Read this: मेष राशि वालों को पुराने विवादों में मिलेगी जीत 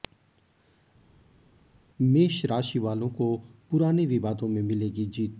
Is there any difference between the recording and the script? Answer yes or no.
no